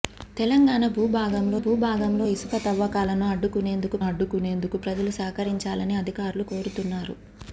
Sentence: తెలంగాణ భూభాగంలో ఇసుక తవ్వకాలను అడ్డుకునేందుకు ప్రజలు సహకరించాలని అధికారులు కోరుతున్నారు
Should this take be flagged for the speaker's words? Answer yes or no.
yes